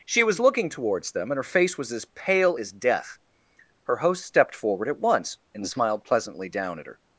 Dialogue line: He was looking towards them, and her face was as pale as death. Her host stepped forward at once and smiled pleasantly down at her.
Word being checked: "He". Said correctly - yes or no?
no